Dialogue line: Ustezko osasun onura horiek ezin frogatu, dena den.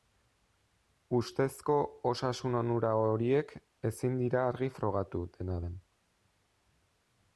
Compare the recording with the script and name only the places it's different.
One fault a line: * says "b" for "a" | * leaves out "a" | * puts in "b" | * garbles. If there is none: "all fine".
* puts in "dira argi"